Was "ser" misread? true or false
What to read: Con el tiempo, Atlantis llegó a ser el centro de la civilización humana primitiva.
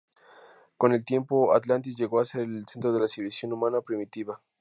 false